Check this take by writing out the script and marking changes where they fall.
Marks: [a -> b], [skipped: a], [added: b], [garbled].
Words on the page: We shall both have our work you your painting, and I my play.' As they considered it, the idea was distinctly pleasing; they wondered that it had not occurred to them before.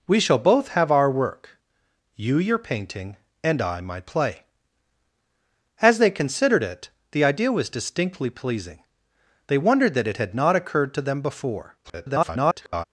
We shall both have our work you your painting, and I my play.' As they considered it, the idea was distinctly pleasing; they wondered that it had not occurred to them before. [garbled]